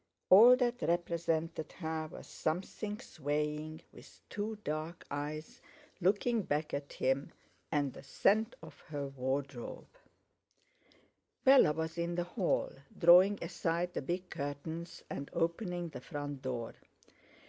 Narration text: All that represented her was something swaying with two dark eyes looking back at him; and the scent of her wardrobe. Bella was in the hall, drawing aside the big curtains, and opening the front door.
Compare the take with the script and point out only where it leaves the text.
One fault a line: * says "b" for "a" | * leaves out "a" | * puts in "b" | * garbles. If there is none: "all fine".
all fine